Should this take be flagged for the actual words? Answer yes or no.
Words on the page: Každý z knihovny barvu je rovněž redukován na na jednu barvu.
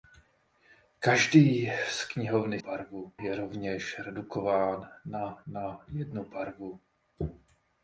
no